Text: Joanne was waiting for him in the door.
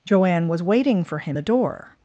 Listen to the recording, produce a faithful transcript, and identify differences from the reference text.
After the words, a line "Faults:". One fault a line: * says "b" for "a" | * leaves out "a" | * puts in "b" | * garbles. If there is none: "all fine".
Joanne was waiting for him the door.
Faults:
* leaves out "in"